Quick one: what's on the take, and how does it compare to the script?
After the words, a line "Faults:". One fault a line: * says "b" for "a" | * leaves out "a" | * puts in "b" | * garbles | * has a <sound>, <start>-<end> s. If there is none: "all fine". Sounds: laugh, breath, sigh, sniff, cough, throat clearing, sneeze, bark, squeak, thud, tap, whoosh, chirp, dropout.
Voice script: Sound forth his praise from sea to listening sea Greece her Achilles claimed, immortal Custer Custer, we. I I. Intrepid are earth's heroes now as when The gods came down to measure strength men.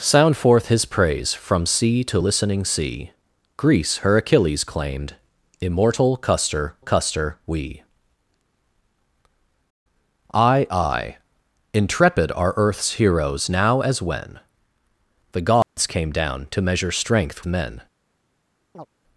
Sound forth his praise from sea to listening sea Greece her Achilles claimed, immortal Custer Custer, we. I I. Intrepid are earth's heroes now as when The gods came down to measure strength men.
Faults:
* has a dropout, 15.6-15.8 s
* has a chirp, 18.7-18.9 s